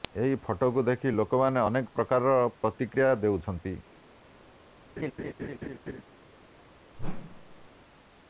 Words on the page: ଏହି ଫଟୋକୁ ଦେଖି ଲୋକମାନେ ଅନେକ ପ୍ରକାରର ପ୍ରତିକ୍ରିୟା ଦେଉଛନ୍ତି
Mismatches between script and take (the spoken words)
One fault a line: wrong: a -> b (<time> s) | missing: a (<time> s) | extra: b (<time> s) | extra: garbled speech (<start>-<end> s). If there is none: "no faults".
no faults